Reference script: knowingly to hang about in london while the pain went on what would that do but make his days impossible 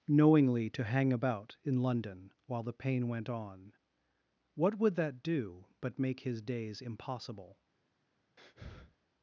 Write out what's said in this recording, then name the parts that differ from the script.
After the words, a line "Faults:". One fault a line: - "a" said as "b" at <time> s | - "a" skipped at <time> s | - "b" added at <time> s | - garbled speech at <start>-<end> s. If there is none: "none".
knowingly to hang about in london while the pain went on what would that do but make his days impossible
Faults:
none